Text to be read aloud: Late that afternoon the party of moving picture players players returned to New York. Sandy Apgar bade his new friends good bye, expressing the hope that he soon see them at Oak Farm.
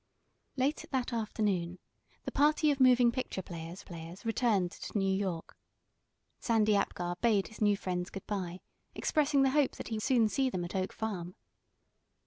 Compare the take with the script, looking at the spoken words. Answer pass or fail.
pass